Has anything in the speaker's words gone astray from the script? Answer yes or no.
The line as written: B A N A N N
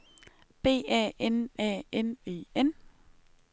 yes